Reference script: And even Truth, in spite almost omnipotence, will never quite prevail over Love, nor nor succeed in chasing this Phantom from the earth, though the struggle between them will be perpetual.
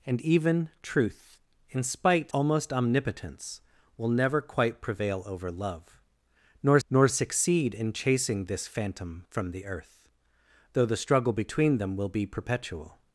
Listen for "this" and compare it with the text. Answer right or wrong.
right